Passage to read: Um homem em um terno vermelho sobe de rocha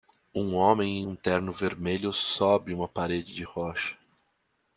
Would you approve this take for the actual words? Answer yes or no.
no